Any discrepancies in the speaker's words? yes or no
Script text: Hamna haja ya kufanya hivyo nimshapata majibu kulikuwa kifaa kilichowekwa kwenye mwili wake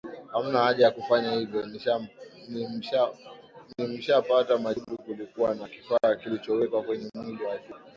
yes